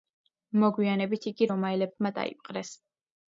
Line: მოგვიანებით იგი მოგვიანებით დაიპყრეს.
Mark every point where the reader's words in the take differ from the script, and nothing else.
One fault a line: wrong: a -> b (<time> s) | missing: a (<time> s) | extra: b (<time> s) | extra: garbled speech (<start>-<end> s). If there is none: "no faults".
wrong: მოგვიანებით -> რომაელებმა (1.5 s)